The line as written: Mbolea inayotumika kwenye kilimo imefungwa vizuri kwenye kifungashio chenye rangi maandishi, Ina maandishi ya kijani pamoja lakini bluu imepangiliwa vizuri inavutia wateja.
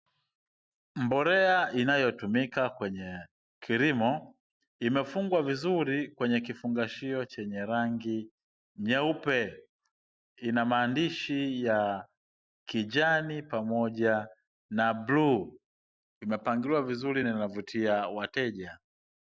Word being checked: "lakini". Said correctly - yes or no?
no